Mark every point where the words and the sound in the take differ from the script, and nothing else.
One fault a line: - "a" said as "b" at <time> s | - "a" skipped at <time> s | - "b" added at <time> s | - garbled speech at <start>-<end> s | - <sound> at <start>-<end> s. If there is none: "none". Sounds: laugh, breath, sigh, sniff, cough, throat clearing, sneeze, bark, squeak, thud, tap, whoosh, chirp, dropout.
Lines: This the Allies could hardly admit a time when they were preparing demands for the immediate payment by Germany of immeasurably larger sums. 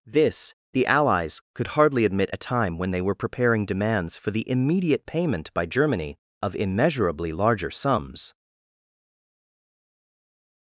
none